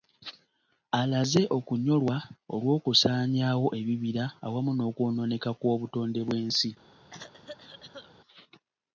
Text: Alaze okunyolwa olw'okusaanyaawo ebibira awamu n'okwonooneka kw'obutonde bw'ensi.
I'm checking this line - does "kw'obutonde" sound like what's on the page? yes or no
yes